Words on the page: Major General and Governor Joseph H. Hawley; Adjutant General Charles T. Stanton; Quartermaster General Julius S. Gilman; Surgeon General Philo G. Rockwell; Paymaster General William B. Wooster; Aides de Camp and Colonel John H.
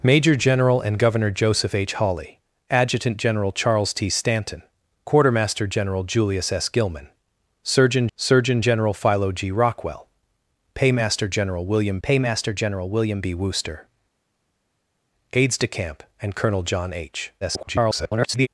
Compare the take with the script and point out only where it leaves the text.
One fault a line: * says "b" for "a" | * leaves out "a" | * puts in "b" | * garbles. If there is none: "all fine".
* puts in "Surgeon"
* puts in "Paymaster General William"
* garbles